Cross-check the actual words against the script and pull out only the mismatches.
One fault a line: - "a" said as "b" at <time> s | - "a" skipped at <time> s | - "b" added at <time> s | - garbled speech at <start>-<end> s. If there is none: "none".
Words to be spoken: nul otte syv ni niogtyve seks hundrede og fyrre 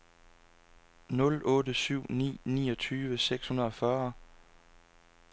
none